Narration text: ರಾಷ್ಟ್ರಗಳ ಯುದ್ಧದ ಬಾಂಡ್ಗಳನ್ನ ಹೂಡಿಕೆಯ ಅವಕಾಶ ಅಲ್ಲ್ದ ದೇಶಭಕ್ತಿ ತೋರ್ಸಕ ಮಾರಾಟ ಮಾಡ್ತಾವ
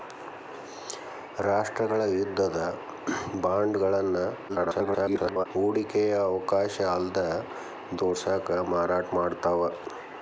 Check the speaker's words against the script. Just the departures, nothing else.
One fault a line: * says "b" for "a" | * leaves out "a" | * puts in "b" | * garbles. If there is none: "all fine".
* garbles
* leaves out "ದೇಶಭಕ್ತಿ"